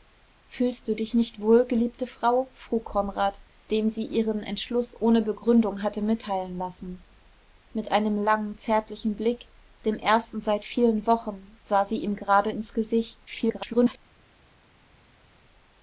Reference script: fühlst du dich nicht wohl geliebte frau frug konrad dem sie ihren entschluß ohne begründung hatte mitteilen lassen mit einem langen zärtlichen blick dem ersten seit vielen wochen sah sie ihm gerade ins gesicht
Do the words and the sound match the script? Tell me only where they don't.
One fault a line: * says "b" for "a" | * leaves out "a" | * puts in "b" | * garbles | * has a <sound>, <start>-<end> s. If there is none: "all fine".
* garbles